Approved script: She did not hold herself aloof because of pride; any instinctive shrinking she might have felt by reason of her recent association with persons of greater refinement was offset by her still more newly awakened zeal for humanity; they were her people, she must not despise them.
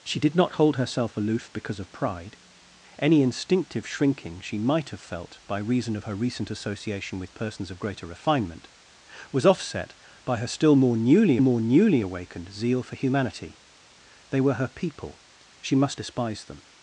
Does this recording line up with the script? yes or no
no